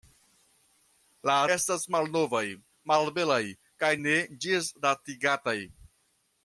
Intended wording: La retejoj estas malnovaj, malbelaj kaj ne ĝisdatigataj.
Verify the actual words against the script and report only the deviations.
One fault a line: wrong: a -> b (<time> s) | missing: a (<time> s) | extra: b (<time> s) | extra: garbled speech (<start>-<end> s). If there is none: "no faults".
missing: retejoj (1.4 s)